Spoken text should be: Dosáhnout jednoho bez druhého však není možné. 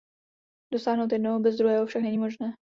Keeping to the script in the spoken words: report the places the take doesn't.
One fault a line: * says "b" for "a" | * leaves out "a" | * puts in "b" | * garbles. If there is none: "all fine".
all fine